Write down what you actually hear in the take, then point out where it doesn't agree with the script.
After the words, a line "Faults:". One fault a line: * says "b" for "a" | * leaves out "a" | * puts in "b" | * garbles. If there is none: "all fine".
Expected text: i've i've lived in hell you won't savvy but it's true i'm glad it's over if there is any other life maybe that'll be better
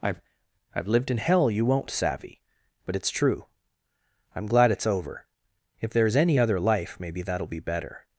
i've i've lived in hell you won't savvy but it's true i'm glad it's over if there is any other life maybe that'll be better
Faults:
all fine